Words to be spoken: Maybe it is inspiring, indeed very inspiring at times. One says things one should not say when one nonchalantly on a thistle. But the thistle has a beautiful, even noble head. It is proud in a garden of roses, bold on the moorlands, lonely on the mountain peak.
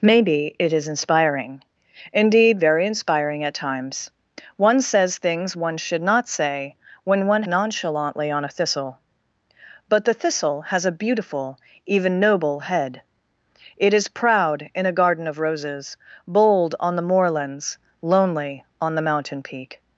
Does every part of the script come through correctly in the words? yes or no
yes